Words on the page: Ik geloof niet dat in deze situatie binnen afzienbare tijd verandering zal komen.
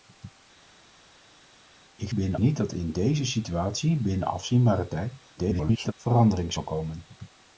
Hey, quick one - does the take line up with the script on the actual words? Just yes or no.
no